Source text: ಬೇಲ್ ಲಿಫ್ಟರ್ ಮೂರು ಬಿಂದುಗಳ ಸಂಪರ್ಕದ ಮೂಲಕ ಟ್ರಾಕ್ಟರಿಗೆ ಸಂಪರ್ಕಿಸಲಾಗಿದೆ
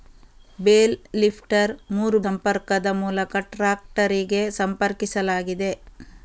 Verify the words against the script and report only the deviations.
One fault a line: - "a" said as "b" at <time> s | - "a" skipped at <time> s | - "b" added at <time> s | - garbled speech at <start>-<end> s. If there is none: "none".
- "ಬಿಂದುಗಳ" skipped at 2.2 s